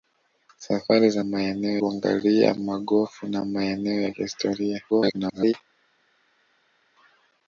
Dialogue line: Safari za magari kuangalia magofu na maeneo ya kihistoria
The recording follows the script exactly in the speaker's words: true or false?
false